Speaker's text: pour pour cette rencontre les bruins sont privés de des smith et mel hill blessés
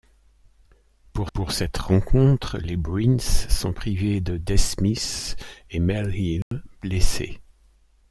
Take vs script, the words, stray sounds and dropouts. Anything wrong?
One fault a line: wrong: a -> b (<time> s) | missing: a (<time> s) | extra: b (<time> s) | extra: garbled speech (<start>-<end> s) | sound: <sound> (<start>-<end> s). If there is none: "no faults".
sound: dropout (6.4-6.5 s)